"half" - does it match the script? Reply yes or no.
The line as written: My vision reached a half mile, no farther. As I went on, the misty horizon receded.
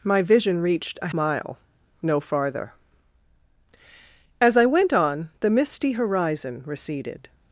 no